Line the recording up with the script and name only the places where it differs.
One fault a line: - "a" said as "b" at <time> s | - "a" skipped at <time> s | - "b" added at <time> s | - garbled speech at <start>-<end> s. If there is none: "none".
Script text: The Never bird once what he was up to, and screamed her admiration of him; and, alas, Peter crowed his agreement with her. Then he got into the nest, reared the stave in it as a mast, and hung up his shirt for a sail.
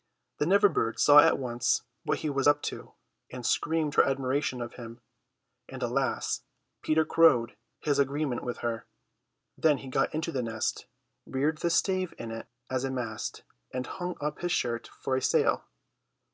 - "saw at" added at 1.0 s